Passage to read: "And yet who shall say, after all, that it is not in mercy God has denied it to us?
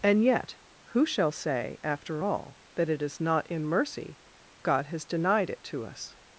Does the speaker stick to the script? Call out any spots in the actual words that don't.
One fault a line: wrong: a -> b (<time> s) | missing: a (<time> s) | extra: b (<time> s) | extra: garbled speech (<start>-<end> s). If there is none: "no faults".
no faults